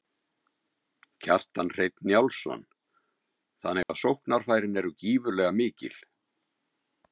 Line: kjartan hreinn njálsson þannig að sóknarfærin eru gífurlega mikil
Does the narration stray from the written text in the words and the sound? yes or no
yes